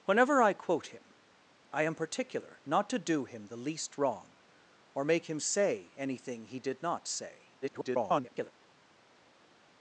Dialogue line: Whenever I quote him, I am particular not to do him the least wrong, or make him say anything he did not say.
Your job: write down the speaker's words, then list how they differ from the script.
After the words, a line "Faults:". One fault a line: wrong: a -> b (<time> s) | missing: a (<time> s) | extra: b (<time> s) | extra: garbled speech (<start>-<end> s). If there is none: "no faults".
Whenever I quote him, I am particular not to do him the least wrong, or make him say anything he did not say. [garbled]
Faults:
extra: garbled speech (7.6-8.5 s)